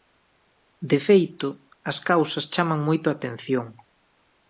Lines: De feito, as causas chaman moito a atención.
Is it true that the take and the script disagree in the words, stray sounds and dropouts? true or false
false